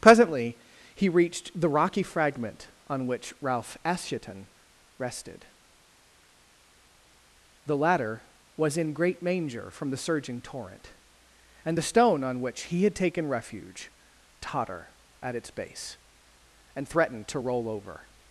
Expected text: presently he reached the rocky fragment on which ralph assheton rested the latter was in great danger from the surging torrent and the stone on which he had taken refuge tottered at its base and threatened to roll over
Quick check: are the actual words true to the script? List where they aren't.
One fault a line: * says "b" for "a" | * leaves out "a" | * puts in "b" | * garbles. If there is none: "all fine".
* says "manger" for "danger"
* says "totter" for "tottered"